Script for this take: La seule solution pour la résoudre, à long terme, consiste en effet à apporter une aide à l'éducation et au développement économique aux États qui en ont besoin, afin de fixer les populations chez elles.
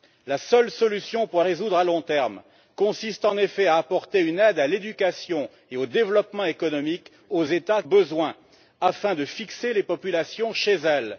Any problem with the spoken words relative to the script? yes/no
yes